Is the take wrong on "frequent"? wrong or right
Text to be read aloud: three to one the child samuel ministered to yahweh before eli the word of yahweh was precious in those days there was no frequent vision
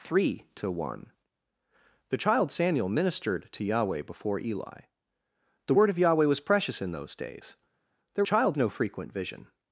right